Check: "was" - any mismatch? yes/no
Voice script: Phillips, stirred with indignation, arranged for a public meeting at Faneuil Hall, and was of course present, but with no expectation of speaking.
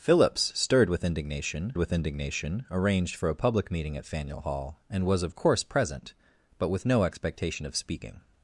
no